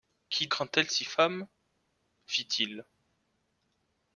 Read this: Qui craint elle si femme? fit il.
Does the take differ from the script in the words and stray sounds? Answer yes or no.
no